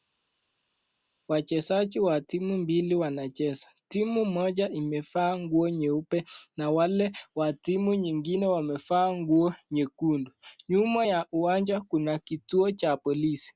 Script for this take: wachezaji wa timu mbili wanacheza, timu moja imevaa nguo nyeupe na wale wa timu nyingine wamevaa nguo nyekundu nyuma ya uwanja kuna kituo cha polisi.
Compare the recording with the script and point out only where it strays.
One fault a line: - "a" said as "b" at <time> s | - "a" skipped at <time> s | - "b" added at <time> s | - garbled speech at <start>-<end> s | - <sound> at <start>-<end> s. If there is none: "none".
none